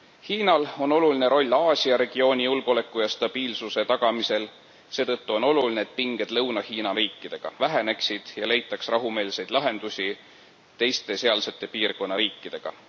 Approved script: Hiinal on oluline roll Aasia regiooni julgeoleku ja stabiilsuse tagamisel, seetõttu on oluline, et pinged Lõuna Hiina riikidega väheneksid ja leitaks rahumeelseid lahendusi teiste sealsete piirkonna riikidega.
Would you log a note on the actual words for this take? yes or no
no